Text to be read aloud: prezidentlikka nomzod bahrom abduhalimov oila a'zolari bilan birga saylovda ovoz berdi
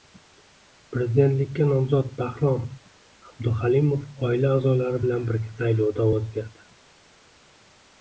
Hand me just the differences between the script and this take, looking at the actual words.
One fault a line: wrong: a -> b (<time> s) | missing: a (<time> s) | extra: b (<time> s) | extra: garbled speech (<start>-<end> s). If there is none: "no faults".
no faults